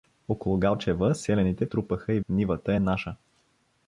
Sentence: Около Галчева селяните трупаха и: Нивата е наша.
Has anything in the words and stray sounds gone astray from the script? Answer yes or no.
no